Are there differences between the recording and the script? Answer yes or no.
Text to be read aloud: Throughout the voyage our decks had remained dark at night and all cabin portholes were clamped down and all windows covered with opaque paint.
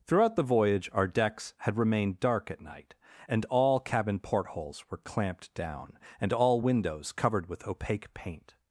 no